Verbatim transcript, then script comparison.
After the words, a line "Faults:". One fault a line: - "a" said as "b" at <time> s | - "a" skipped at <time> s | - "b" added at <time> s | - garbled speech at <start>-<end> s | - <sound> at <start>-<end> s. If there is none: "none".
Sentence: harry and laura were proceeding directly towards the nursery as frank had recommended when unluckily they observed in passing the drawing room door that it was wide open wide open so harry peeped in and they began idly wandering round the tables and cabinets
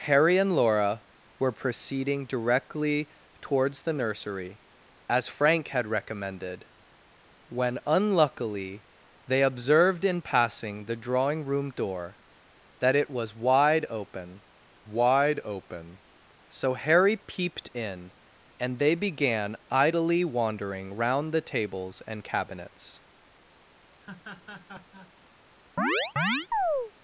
harry and laura were proceeding directly towards the nursery as frank had recommended when unluckily they observed in passing the drawing room door that it was wide open wide open so harry peeped in and they began idly wandering round the tables and cabinets
Faults:
- laugh at 24.0-25.1 s
- chirp at 25.8-26.9 s